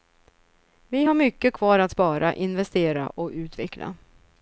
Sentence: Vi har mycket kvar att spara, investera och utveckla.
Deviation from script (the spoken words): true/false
false